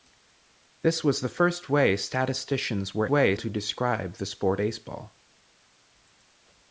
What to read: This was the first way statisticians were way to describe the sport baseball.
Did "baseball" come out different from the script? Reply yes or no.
no